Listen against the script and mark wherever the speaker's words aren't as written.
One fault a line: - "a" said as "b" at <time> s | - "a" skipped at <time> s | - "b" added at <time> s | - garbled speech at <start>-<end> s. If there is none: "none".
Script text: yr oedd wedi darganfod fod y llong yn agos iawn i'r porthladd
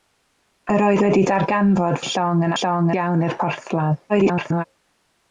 - "fod" skipped at 2.0 s
- "agos" said as "llong" at 2.6 s
- garbled speech at 4.1-4.6 s